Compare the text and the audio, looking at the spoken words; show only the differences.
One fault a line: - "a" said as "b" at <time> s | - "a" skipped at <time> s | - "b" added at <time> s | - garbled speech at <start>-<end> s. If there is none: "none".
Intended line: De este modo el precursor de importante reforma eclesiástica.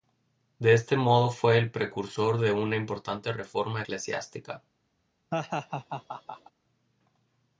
- "fue" added at 1.3 s
- "una" added at 2.5 s